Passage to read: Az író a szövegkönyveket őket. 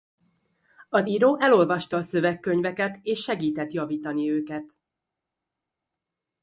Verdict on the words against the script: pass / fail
fail